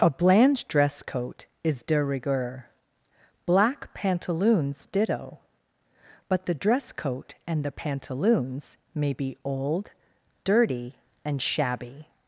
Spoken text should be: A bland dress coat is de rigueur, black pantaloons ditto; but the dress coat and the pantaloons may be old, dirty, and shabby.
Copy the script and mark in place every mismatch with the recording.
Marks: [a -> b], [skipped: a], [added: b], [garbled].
A bland dress coat is de rigueur, black pantaloons ditto; but the dress coat and the pantaloons may be old, dirty, and shabby.